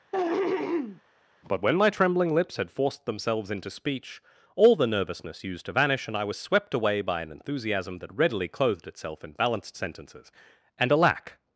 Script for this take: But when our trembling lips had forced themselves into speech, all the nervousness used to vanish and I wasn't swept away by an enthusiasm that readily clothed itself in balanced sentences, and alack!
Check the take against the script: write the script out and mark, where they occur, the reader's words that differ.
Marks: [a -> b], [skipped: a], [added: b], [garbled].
But when [our -> my] trembling lips had forced themselves into speech, all the nervousness used to vanish and I [wasn't -> was] swept away by an enthusiasm that readily clothed itself in balanced sentences, and alack!